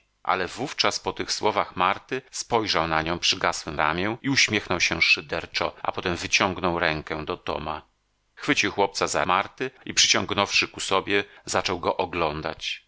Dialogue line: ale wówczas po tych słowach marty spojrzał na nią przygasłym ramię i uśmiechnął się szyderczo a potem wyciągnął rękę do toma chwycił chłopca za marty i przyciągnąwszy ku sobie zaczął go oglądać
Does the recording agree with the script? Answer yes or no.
yes